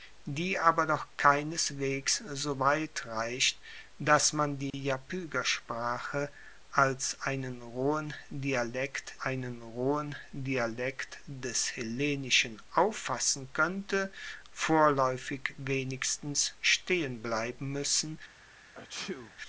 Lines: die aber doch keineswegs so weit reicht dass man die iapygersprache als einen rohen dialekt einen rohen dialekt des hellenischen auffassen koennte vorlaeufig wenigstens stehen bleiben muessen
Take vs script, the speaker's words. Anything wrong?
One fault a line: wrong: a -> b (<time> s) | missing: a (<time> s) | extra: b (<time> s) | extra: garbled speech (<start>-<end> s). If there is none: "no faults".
no faults